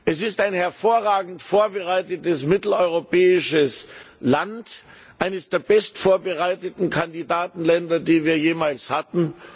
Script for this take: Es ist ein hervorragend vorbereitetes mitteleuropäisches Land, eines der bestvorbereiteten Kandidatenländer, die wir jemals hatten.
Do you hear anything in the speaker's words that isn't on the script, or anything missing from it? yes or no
no